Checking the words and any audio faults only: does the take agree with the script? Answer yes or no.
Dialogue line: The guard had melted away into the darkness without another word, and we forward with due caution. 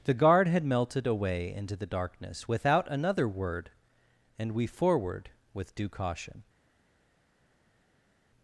yes